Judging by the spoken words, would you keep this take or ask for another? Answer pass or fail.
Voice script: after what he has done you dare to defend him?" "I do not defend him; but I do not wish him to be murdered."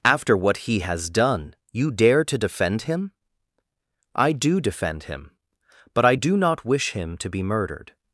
fail